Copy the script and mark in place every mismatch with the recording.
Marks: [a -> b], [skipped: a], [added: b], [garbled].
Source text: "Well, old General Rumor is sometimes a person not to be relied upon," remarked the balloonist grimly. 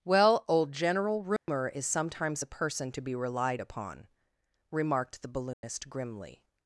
"Well, old General Rumor is sometimes a person [skipped: not] to be relied upon," remarked the balloonist grimly.